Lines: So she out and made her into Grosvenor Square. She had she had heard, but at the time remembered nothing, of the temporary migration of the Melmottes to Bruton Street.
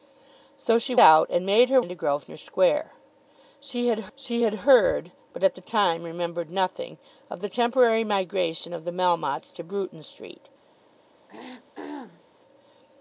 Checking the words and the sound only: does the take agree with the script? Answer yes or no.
no